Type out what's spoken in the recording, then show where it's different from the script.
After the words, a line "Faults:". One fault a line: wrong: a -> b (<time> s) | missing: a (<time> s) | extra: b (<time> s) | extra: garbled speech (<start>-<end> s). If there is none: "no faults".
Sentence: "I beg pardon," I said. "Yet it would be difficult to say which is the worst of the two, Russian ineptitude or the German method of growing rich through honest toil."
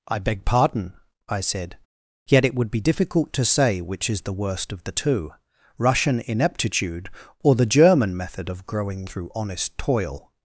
"I beg pardon," I said. "Yet it would be difficult to say which is the worst of the two, Russian ineptitude or the German method of growing through honest toil."
Faults:
missing: rich (9.1 s)